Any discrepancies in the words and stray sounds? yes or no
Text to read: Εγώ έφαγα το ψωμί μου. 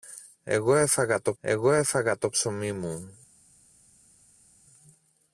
yes